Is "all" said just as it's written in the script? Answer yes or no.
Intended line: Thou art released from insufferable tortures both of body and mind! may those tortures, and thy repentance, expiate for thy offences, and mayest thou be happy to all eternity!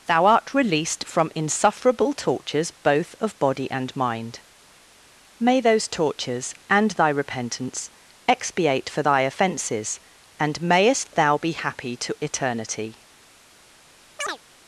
no